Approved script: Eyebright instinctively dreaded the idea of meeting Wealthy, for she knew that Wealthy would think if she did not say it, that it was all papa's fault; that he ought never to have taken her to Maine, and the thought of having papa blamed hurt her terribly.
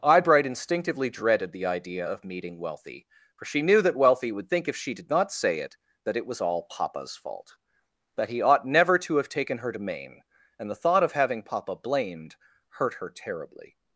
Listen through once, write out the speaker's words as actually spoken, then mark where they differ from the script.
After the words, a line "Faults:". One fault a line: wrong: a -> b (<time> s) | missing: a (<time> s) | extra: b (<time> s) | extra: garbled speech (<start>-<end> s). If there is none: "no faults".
Eyebright instinctively dreaded the idea of meeting Wealthy, for she knew that Wealthy would think if she did not say it, that it was all papa's fault; that he ought never to have taken her to Maine, and the thought of having papa blamed hurt her terribly.
Faults:
no faults